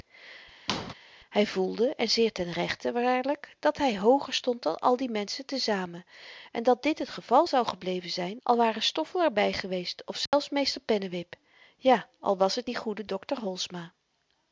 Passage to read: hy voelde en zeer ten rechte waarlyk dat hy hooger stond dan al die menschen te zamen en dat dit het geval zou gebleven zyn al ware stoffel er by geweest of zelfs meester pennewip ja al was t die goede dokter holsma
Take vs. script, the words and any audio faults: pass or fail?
fail